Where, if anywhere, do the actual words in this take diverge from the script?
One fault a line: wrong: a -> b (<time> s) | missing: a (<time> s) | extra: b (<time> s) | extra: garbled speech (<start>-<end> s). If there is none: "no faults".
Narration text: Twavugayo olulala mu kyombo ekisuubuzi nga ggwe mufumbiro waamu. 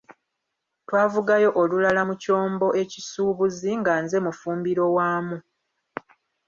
wrong: ggwe -> nze (4.0 s)